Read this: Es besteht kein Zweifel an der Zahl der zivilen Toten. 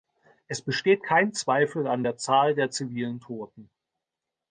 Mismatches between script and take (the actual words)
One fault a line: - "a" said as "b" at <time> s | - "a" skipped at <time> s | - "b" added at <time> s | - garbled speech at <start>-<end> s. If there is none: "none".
none